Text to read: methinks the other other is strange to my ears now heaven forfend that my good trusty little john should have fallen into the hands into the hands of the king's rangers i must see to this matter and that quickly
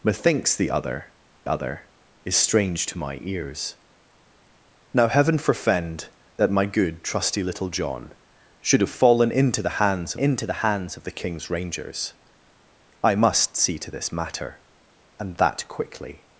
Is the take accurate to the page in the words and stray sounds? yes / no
yes